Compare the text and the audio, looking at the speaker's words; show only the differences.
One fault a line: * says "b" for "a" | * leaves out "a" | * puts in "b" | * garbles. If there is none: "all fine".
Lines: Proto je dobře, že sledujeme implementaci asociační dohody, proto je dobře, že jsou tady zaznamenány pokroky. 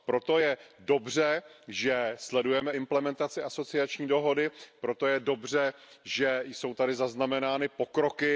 all fine